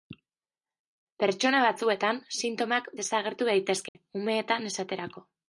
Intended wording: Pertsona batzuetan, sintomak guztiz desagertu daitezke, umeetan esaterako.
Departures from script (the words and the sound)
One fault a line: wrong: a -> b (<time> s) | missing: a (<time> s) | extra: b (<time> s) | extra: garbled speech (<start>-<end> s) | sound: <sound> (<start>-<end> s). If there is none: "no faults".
missing: guztiz (2.9 s)
sound: dropout (3.9-4.0 s)